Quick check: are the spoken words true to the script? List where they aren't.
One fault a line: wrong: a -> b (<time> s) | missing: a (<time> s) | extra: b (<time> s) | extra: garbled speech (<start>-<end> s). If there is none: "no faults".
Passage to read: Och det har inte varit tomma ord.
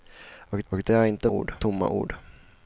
extra: och (0.7 s)
wrong: varit -> ord (1.3 s)